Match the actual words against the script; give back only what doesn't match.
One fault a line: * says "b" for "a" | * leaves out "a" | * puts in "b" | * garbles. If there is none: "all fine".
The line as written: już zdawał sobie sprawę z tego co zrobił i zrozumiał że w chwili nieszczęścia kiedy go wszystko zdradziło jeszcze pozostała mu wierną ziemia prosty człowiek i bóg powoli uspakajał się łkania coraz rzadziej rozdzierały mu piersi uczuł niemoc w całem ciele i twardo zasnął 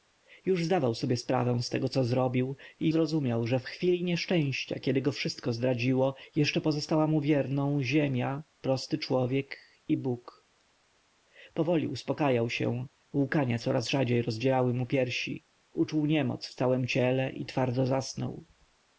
all fine